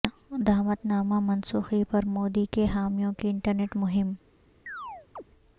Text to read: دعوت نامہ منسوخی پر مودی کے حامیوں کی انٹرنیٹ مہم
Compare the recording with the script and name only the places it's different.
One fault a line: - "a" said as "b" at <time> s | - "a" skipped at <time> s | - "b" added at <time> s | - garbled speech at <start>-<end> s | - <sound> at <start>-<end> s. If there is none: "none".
- chirp at 4.7-5.2 s